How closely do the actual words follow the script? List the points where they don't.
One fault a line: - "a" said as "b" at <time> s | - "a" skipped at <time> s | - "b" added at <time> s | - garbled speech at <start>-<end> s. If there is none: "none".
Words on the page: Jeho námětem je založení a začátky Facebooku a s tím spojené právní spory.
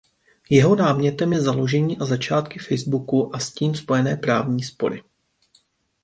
none